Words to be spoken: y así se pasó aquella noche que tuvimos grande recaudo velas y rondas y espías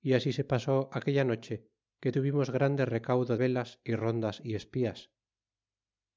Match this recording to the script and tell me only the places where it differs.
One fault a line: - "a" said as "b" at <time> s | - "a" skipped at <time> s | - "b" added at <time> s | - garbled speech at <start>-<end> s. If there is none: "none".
none